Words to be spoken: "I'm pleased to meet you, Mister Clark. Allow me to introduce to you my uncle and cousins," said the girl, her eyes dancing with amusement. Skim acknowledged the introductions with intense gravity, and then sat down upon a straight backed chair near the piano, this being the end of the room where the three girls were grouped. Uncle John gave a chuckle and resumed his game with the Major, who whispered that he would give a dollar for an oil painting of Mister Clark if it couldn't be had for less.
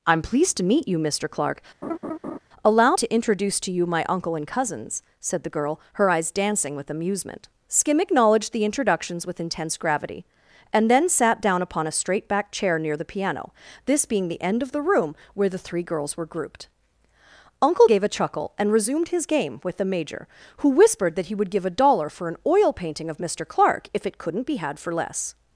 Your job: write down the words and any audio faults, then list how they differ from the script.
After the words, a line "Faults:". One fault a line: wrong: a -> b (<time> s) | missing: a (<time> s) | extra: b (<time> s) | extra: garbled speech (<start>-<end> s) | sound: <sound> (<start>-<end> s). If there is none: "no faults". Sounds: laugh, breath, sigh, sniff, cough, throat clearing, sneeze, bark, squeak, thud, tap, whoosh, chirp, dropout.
"I'm pleased to meet you, Mister Clark. Allow to introduce to you my uncle and cousins," said the girl, her eyes dancing with amusement. Skim acknowledged the introductions with intense gravity, and then sat down upon a straight backed chair near the piano, this being the end of the room where the three girls were grouped. Uncle Gave a chuckle and resumed his game with the Major, who whispered that he would give a dollar for an oil painting of Mister Clark if it couldn't be had for less.
Faults:
sound: laugh (1.8-2.4 s)
missing: me (2.9 s)
missing: John (17.9 s)